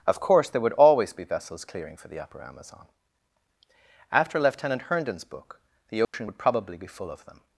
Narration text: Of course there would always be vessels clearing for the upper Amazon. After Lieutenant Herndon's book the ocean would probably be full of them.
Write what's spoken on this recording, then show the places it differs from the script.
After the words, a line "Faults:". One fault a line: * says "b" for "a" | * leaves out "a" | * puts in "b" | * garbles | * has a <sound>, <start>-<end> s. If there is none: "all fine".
Of course there would always be vessels clearing for the upper Amazon. After Lieutenant Herndon's book the ocean would probably be full of them.
Faults:
* has a dropout, 6.0-6.1 s